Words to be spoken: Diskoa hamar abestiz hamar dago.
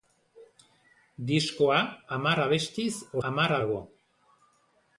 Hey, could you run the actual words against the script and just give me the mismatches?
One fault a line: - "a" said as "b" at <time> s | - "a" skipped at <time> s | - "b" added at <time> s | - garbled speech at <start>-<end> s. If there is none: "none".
none